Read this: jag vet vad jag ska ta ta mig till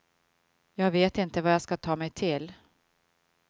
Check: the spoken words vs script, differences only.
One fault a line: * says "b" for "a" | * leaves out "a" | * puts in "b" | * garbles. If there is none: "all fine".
* puts in "inte"
* leaves out "ta"